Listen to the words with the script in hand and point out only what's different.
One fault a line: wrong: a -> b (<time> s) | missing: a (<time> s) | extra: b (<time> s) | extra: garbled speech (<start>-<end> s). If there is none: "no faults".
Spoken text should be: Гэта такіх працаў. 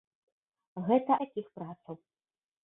no faults